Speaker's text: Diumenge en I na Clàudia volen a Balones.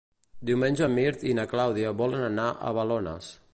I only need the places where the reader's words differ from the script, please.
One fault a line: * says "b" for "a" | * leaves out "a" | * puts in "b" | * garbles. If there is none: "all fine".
* puts in "Mirt"
* puts in "anar"